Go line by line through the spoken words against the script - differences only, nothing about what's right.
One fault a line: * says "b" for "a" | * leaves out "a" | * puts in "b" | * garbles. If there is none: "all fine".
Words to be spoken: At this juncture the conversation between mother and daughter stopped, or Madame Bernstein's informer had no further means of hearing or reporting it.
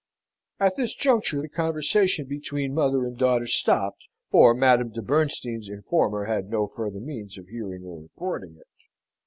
* puts in "de"